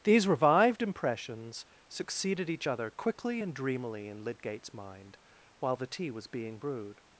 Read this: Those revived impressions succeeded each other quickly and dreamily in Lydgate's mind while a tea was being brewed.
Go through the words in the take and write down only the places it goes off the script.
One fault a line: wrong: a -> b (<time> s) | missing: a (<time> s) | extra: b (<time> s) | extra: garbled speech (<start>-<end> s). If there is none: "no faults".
wrong: Those -> These (0.0 s)
wrong: a -> the (5.8 s)